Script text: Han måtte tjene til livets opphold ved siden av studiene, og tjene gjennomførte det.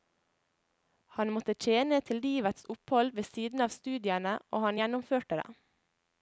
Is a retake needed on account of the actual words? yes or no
yes